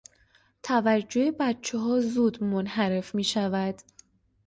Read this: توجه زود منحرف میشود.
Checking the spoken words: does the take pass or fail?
fail